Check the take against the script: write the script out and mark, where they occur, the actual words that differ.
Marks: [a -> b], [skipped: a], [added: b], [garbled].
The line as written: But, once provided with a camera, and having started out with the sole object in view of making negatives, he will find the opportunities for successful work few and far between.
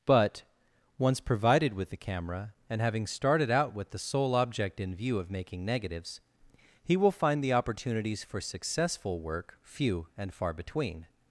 But, once provided with [a -> the] camera, and having started out with the sole object in view of making negatives, he will find the opportunities for successful work few and far between.